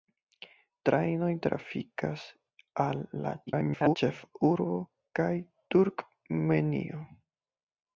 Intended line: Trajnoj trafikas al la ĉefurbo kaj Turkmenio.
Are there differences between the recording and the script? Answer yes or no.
yes